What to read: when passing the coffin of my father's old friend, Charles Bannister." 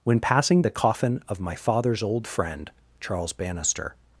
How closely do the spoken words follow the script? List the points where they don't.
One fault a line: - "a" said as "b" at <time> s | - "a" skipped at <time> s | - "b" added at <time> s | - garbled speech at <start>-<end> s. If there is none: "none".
none